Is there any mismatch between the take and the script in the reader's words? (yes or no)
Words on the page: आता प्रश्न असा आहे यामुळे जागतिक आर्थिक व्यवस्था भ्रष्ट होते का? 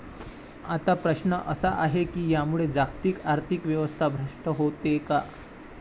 yes